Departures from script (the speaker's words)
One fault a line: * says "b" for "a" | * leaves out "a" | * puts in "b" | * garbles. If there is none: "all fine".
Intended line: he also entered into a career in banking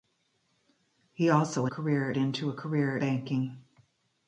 * says "career" for "entered"
* leaves out "in"